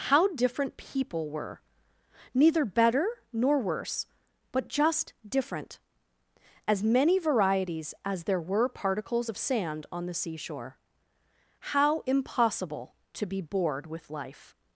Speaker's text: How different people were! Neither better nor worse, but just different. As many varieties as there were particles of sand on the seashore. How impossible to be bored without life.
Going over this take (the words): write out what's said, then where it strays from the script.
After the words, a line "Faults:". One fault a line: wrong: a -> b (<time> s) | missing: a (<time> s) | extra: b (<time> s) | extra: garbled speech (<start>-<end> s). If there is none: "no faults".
How different people were! Neither better nor worse, but just different. As many varieties as there were particles of sand on the seashore. How impossible to be bored with life.
Faults:
wrong: without -> with (13.9 s)